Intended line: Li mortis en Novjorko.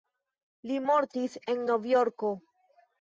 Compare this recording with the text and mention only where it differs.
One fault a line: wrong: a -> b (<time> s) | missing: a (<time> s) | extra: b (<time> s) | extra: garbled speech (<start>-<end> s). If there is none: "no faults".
no faults